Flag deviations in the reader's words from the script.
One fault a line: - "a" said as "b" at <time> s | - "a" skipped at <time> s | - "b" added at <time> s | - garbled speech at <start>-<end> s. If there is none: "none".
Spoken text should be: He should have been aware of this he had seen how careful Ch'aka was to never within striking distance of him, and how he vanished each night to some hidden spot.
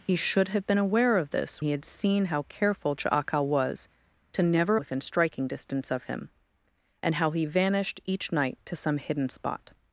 none